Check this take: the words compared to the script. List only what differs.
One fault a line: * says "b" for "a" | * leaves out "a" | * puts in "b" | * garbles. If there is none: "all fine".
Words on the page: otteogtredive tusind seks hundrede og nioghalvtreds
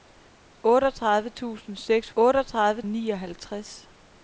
* says "otteogtredive" for "hundrede"